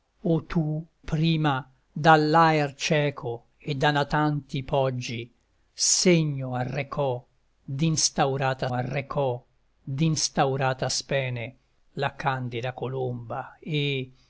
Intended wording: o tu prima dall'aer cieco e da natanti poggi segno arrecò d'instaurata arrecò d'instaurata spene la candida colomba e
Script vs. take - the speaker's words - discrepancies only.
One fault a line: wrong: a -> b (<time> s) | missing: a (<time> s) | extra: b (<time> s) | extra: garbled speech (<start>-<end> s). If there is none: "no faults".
no faults